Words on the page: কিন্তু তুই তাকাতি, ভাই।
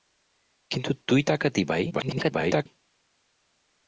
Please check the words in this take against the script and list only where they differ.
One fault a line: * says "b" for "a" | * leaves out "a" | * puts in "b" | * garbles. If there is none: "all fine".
* garbles